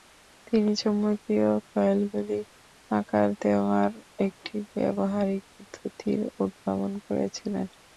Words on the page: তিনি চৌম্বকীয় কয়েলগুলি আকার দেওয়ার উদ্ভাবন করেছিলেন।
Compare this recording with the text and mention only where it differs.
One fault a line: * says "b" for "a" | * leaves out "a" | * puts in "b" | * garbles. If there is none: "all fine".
* puts in "একটি ব্যবহারিক পদ্ধতির"